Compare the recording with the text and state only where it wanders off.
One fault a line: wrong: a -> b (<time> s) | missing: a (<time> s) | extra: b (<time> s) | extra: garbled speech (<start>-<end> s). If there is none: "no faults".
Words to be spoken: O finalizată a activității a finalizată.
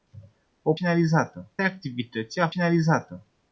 no faults